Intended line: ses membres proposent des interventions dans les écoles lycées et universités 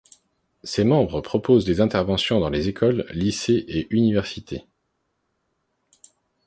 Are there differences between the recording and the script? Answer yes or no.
no